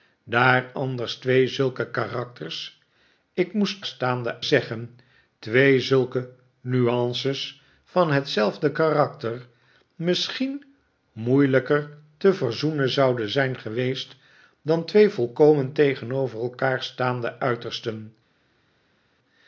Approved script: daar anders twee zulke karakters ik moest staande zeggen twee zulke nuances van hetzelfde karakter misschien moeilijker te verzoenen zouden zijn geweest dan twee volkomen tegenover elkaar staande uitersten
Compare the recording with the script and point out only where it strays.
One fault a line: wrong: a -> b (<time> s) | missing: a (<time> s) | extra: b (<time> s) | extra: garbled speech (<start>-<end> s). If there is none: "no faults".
no faults